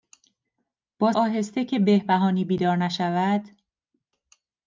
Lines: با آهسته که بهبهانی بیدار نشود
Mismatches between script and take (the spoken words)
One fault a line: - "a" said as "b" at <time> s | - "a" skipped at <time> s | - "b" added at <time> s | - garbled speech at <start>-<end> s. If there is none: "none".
none